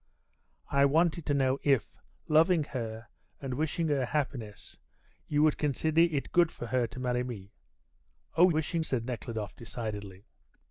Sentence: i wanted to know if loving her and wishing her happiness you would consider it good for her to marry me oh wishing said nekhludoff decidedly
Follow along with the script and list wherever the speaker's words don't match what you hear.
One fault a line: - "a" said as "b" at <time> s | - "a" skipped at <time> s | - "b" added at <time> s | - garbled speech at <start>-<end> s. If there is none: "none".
none